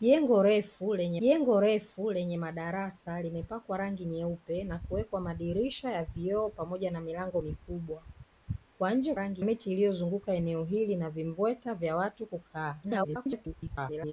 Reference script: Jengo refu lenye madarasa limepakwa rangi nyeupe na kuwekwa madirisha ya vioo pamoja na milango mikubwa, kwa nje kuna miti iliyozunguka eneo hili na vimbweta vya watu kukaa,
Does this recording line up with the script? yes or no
no